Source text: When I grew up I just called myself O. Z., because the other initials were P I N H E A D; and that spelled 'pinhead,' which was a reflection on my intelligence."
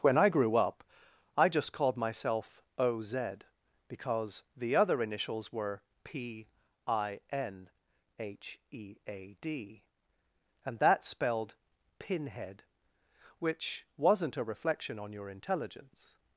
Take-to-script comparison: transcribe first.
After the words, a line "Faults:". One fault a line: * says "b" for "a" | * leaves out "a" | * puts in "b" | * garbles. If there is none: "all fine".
When I grew up I just called myself O. Z., because the other initials were P I N H E A D; and that spelled 'pinhead,' which wasn't a reflection on your intelligence."
Faults:
* says "wasn't" for "was"
* says "your" for "my"